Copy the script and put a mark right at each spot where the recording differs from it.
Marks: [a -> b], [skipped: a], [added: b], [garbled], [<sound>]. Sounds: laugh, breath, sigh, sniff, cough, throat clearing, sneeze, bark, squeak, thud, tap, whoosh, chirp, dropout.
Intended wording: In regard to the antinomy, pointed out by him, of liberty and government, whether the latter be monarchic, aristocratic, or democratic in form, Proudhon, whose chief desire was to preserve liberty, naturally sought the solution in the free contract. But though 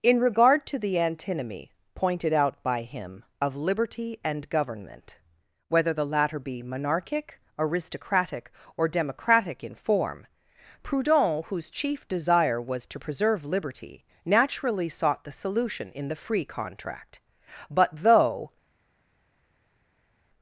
In regard to the antinomy, pointed out by him, of liberty and government, whether the latter be monarchic, aristocratic, or democratic in form, Proudhon, whose chief desire was to preserve liberty, naturally sought the solution in the free contract. But though